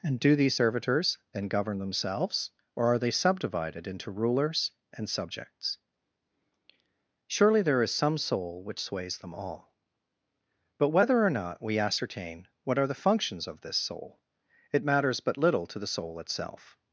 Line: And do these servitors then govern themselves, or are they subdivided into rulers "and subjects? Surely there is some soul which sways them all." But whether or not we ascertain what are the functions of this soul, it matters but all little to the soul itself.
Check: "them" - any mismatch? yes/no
no